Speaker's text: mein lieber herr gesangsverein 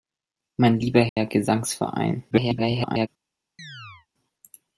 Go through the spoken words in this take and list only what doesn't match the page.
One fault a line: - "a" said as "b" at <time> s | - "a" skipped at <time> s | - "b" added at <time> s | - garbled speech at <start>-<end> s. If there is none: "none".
- garbled speech at 2.3-3.1 s